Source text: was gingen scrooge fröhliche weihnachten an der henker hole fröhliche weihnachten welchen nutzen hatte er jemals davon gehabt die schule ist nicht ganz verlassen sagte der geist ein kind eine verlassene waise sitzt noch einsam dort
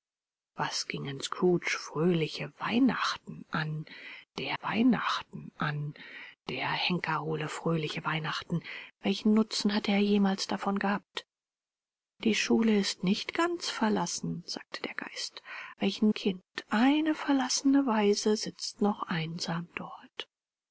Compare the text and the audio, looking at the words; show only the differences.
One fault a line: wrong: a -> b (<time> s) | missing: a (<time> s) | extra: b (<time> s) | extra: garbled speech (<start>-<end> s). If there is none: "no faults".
extra: weihnachten an der (4.6 s)
wrong: ein -> welchen (15.8 s)